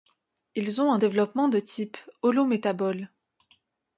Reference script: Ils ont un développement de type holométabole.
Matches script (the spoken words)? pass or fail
pass